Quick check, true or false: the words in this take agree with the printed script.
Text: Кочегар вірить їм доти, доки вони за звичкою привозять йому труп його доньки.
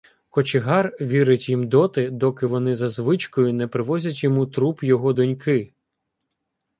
false